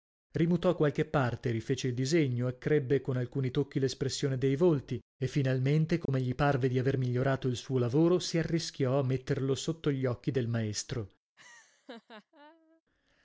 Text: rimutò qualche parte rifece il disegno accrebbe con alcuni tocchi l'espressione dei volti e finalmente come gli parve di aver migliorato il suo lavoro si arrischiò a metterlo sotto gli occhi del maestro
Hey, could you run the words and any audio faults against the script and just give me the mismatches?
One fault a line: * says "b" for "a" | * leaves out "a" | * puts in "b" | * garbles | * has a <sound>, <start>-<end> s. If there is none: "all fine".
* has a dropout, 6.1-6.1 s
* has a laugh, 11.4-12.8 s